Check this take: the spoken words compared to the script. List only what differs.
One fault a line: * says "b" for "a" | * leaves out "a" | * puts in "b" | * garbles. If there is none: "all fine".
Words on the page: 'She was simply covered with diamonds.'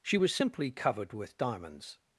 all fine